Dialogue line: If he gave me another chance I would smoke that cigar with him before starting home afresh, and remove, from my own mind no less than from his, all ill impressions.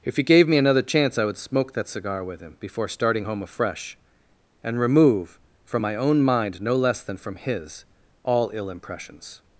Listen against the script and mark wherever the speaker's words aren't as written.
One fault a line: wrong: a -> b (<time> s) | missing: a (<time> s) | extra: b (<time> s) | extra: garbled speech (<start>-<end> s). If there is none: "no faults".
no faults